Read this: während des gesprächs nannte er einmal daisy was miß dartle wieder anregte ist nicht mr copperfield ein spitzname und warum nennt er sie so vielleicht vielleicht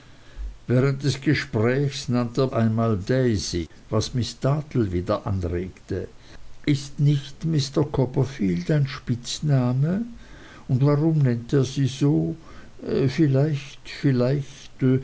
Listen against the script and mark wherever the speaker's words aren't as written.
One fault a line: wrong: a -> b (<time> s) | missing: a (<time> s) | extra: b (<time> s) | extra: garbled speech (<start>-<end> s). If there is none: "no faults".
no faults